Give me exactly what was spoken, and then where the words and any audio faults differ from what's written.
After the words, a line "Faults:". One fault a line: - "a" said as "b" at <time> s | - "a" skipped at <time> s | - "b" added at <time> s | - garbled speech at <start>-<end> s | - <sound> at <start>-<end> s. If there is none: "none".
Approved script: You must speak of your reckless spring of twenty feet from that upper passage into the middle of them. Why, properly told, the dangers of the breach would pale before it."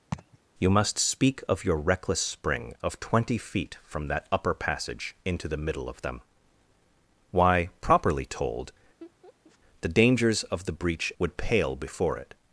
You must speak of your reckless spring of twenty feet from that upper passage into the middle of them. Why, properly told, the dangers of the breach would pale before it."
Faults:
- laugh at 0.1-0.4 s
- laugh at 9.0-9.6 s